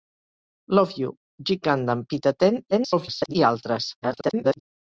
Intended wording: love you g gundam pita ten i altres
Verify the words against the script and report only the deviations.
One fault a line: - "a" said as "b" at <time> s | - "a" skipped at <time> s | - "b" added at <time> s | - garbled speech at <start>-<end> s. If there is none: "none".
- garbled speech at 2.7-3.4 s
- garbled speech at 4.0-4.6 s